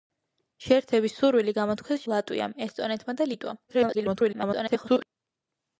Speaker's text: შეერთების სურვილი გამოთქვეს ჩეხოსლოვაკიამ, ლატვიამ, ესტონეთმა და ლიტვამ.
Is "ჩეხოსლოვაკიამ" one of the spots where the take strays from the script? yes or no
yes